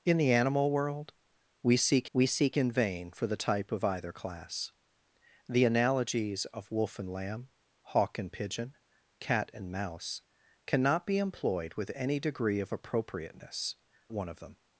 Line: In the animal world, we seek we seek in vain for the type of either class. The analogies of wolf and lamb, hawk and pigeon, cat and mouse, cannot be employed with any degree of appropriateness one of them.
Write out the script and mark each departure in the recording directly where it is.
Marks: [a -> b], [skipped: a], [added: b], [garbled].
In the animal world, we seek we seek in vain for the type of either class. The analogies of wolf and lamb, hawk and pigeon, cat and mouse, cannot be employed with any degree of appropriateness one of them.